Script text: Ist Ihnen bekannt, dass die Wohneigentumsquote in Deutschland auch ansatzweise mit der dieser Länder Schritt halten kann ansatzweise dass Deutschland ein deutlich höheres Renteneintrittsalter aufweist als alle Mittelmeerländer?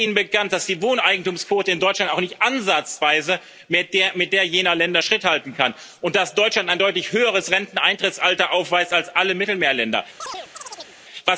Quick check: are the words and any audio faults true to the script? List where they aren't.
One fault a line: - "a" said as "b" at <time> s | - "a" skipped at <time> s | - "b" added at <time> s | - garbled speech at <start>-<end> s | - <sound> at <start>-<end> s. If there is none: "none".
- "nicht" added at 2.2 s
- "dieser" said as "jener" at 4.5 s
- "ansatzweise" said as "und" at 6.0 s
- chirp at 10.2-11.0 s